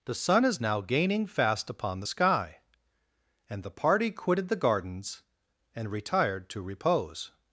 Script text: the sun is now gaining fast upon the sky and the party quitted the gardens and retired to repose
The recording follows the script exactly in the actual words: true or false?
true